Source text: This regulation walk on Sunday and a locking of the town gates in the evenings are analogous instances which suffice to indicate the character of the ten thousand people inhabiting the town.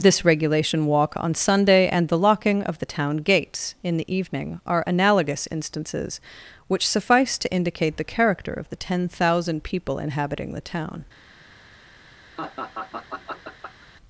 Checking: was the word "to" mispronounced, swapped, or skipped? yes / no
no